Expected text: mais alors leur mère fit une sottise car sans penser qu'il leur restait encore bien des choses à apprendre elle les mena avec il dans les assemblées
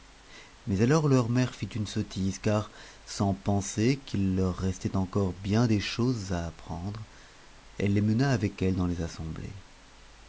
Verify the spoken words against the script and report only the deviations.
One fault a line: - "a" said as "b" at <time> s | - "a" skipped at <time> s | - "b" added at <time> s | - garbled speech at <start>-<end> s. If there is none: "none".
- "il" said as "elle" at 8.6 s